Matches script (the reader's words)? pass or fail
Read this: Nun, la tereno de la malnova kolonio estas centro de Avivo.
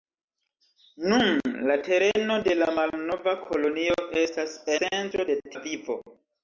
pass